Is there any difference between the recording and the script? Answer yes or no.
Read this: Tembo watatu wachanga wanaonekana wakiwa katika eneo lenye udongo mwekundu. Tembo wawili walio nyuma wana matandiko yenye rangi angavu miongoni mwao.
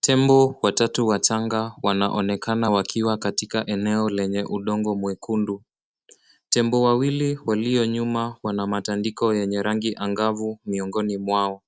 no